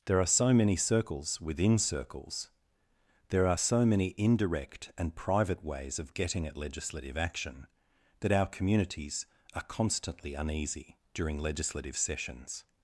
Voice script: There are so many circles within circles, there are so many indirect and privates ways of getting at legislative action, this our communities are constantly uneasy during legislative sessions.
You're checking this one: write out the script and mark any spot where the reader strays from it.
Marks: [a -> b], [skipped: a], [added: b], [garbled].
There are so many circles within circles, there are so many indirect and [privates -> private] ways of getting at legislative action, [this -> that] our communities are constantly uneasy during legislative sessions.